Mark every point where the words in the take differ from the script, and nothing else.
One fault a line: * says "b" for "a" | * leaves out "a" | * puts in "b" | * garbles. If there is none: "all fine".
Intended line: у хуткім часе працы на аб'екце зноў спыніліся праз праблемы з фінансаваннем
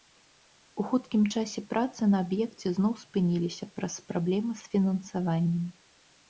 all fine